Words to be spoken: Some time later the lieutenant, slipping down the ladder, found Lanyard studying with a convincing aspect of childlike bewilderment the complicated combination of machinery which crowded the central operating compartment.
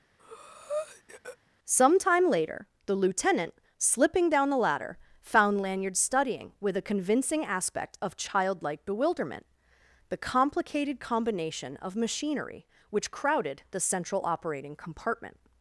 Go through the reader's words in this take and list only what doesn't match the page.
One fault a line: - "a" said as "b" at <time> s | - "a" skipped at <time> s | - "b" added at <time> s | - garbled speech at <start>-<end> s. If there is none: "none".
none